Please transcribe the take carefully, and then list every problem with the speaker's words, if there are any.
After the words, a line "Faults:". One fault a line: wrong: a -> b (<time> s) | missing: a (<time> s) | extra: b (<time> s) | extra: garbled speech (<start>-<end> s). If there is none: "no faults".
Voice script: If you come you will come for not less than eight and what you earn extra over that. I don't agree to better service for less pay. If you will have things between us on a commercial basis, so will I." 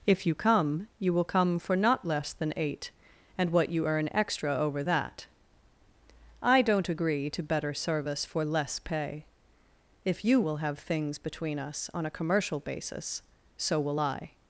If you come you will come for not less than eight and what you earn extra over that. I don't agree to better service for less pay. If you will have things between us on a commercial basis, so will I."
Faults:
no faults